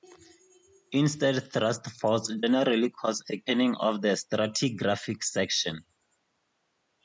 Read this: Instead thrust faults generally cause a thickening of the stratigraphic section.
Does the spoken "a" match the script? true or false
false